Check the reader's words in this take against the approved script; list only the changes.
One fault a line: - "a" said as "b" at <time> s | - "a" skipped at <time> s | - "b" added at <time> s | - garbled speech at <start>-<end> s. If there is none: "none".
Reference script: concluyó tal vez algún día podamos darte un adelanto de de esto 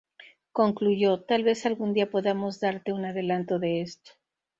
- "de" skipped at 3.8 s